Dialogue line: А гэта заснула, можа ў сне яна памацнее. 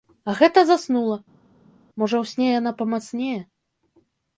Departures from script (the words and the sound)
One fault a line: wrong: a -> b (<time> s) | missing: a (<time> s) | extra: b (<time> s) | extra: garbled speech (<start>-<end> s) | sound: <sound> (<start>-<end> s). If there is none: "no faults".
no faults